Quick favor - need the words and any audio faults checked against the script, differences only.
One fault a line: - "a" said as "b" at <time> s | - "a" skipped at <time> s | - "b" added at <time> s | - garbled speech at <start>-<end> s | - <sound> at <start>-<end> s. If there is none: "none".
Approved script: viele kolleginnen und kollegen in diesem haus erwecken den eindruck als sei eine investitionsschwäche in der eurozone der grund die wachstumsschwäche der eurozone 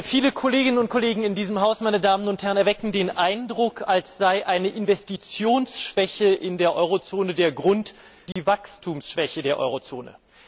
- dropout at 8.3-8.4 s